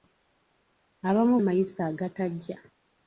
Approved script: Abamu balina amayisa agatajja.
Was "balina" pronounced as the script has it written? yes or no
no